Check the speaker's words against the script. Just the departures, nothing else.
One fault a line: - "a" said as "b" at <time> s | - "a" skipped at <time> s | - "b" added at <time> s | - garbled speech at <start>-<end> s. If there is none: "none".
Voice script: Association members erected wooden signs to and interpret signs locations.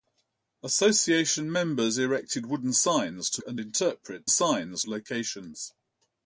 none